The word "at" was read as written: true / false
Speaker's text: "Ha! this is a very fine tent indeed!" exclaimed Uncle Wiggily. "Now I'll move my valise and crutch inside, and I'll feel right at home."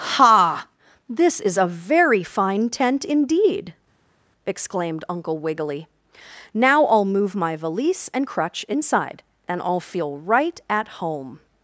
true